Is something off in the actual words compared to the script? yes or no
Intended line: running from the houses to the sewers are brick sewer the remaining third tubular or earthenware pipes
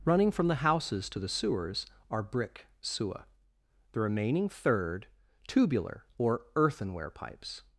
no